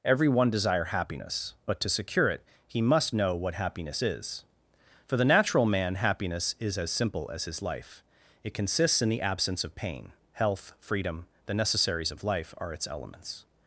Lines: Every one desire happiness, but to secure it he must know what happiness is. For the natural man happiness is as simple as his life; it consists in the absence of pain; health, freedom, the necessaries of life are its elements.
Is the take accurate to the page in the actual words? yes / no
yes